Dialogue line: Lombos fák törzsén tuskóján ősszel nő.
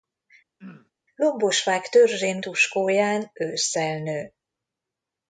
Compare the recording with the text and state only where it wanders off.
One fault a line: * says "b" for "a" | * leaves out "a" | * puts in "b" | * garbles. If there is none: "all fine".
all fine